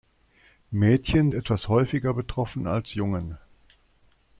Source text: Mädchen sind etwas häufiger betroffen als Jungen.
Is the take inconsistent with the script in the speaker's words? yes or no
yes